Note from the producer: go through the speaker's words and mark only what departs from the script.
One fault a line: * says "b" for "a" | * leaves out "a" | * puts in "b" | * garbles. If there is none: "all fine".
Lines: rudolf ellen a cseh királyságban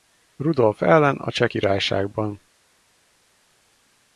all fine